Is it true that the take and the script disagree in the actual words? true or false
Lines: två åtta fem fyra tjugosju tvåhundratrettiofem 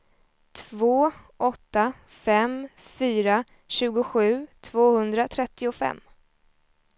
false